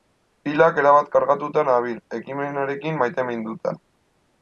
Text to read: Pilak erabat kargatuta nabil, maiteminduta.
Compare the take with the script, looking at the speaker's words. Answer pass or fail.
fail